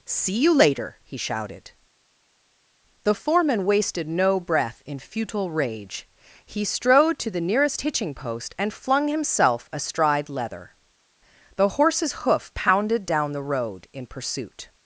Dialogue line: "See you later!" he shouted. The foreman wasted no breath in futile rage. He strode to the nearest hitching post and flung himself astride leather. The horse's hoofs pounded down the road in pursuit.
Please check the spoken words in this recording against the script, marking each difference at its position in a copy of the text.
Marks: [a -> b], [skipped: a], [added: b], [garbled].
"See you later!" he shouted. The foreman wasted no breath in futile rage. He strode to the nearest hitching post and flung himself astride leather. The horse's [hoofs -> hoof] pounded down the road in pursuit.